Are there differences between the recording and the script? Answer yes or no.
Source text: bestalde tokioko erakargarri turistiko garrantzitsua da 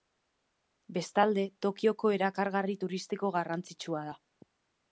no